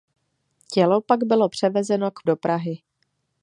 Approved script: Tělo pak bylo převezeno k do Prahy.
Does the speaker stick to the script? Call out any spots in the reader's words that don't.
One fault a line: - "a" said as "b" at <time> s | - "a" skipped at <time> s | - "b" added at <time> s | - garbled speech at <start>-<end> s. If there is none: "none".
none